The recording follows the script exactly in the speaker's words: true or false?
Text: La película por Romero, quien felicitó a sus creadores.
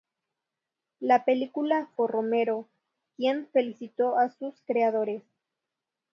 true